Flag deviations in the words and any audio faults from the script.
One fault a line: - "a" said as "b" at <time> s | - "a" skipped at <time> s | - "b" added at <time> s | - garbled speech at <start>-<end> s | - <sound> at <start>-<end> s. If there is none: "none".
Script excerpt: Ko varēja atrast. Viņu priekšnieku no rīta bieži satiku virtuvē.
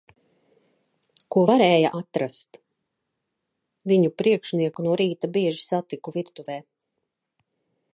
none